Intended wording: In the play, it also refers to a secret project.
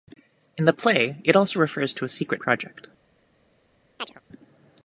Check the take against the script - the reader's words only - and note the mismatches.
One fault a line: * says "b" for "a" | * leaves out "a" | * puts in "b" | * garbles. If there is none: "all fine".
all fine